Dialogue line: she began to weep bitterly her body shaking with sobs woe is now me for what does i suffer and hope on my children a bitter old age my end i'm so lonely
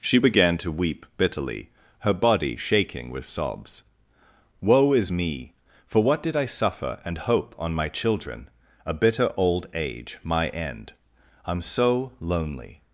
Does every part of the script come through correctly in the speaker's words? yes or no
no